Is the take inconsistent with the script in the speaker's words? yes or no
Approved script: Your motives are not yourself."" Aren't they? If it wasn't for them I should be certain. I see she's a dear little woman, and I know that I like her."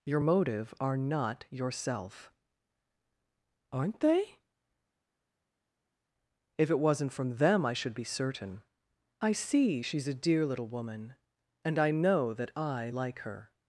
yes